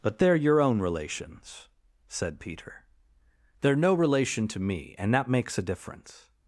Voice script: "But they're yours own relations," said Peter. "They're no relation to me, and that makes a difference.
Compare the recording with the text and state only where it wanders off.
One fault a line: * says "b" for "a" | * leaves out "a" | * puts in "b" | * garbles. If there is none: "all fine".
* says "your" for "yours"